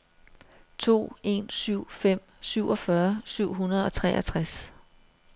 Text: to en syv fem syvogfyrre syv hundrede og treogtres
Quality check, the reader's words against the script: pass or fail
pass